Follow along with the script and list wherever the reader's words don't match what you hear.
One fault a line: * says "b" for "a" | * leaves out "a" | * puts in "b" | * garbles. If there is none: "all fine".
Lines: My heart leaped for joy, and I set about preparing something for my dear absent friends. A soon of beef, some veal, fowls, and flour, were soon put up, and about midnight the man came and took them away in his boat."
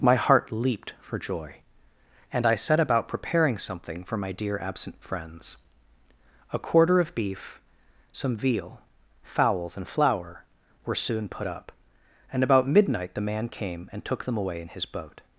* says "quarter" for "soon"